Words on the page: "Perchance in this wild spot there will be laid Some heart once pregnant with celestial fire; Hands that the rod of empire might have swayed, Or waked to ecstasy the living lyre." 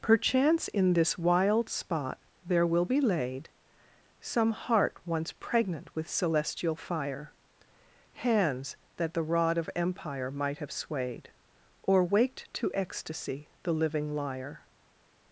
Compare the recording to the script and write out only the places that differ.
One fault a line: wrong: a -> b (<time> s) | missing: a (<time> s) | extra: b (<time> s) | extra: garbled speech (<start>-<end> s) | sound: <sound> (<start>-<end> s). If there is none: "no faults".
no faults